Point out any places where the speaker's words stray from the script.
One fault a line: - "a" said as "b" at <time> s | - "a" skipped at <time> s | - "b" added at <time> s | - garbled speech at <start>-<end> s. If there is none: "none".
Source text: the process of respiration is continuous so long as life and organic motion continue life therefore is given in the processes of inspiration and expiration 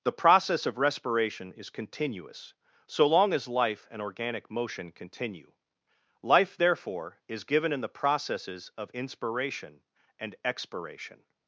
none